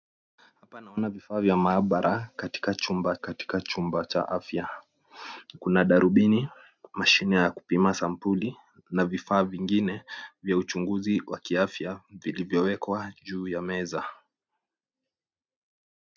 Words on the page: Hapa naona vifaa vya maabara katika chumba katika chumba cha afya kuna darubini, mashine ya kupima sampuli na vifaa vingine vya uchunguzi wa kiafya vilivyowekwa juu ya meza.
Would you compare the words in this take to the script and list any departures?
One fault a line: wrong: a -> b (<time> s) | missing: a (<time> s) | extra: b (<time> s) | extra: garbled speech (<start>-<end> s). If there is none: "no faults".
no faults